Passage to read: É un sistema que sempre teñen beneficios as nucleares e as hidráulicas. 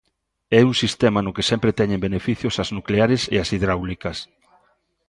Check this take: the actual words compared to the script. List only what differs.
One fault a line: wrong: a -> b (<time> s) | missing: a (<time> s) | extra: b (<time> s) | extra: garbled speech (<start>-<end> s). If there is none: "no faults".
extra: no (1.2 s)